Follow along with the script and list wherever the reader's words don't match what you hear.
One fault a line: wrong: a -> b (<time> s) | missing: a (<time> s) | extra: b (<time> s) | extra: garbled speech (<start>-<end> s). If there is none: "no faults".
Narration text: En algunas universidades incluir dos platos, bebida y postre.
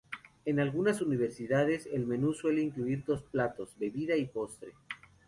extra: el menú suele (1.9 s)